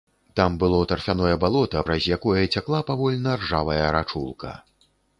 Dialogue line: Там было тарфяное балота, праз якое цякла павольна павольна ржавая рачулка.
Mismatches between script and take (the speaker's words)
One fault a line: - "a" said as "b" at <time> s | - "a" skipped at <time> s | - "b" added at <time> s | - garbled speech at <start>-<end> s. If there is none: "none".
- "павольна" skipped at 3.3 s